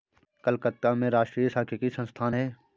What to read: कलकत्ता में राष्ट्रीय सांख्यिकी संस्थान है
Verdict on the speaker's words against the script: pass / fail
pass